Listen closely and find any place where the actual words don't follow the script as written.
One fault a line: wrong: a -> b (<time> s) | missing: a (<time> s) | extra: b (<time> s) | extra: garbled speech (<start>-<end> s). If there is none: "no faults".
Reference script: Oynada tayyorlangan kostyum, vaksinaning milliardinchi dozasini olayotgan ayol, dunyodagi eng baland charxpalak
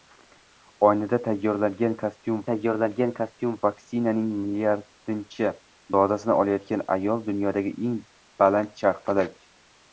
extra: tayyorlangan kostyum (2.5 s)